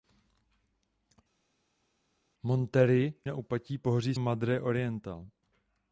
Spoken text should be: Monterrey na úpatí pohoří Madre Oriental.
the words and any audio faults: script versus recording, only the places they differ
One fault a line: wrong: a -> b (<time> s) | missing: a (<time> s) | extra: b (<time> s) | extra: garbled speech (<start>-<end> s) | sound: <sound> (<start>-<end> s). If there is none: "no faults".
no faults